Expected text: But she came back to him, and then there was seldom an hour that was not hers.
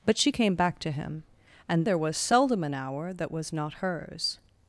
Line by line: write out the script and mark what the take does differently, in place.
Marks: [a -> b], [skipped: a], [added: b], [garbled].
But she came back to him, and [skipped: then] there was seldom an hour that was not hers.